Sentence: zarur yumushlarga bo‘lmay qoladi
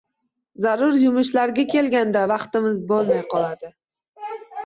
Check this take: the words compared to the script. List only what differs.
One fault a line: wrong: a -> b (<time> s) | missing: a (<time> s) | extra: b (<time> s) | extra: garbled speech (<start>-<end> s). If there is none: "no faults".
extra: kelganda vaqtimiz (1.7 s)